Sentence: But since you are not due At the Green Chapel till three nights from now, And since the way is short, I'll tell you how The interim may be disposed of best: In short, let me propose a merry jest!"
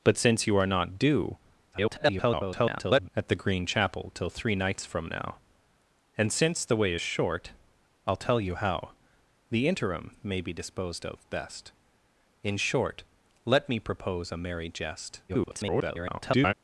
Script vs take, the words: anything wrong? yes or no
yes